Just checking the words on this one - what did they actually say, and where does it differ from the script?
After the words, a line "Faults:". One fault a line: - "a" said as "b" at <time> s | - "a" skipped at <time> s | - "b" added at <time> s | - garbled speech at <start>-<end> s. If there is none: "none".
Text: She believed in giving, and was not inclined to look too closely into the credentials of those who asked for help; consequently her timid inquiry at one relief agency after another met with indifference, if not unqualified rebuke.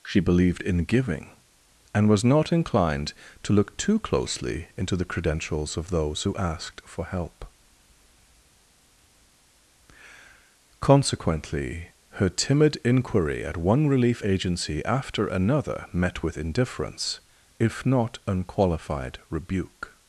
She believed in giving, and was not inclined to look too closely into the credentials of those who asked for help; consequently her timid inquiry at one relief agency after another met with indifference, if not unqualified rebuke.
Faults:
none